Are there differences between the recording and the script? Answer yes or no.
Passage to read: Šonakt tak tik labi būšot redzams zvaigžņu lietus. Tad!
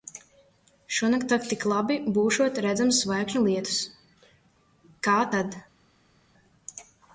yes